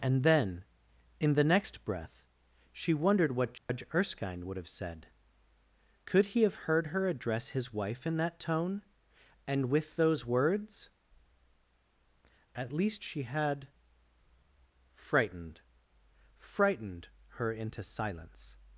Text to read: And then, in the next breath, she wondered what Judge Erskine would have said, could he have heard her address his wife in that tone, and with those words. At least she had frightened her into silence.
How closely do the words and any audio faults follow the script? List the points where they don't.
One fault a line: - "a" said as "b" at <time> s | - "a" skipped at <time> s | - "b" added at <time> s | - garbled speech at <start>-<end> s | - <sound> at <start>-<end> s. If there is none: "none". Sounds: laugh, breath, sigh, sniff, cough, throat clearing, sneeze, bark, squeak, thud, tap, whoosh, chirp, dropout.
- dropout at 3.6-3.7 s
- "frightened" added at 16.4 s